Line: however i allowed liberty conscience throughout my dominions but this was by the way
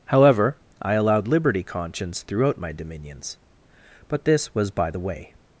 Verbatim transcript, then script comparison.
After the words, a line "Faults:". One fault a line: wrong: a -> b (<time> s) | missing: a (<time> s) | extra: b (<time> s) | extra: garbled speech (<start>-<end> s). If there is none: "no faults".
however i allowed liberty conscience throughout my dominions but this was by the way
Faults:
no faults